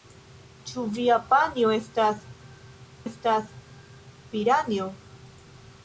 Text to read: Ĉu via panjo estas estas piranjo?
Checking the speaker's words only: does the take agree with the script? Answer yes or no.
yes